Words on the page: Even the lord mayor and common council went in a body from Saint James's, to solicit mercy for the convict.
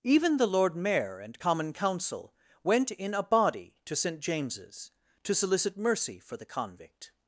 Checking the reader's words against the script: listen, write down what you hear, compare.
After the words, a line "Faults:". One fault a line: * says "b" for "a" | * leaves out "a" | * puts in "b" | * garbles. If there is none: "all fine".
Even the lord mayor and common council went in a body to Saint James's, to solicit mercy for the convict.
Faults:
* says "to" for "from"